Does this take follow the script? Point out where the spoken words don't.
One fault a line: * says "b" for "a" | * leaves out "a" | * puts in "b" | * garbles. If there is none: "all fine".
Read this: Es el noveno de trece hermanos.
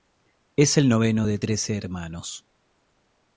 all fine